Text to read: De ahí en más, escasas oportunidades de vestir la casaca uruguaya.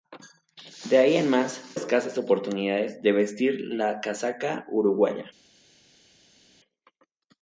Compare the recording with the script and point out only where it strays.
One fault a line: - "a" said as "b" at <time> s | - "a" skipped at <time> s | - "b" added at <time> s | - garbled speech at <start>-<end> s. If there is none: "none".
none